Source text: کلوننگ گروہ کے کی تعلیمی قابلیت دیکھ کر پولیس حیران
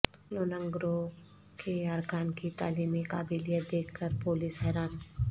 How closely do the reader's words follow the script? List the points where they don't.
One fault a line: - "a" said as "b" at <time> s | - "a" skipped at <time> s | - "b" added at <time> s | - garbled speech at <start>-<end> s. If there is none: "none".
- "ارکان" added at 1.9 s